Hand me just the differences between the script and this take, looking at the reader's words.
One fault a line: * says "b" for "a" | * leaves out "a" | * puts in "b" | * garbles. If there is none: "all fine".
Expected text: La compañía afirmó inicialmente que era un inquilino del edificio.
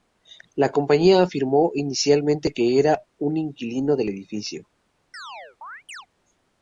all fine